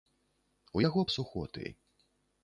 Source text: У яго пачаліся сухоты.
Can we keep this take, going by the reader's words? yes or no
no